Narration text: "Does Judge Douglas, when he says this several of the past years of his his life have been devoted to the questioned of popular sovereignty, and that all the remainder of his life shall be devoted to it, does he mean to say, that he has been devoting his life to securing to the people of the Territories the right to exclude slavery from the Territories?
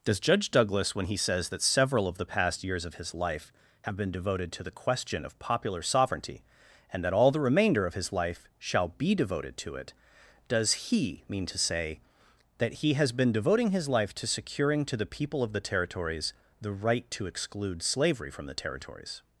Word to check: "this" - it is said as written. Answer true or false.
false